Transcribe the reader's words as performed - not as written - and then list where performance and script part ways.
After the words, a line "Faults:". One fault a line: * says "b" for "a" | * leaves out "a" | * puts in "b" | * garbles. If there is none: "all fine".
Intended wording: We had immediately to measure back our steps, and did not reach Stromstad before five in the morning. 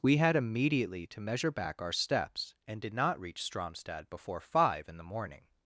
We had immediately to measure back our steps, and did not reach Stromstad before five in the morning.
Faults:
all fine